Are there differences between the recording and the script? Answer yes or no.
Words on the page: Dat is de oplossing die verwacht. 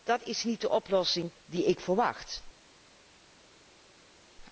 yes